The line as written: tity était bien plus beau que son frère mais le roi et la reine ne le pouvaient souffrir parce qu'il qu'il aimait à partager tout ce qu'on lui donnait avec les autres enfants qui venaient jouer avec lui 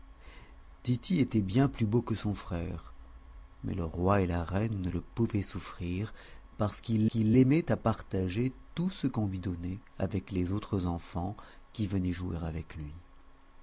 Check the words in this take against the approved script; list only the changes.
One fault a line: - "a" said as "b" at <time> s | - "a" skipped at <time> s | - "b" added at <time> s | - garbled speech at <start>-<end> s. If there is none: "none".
none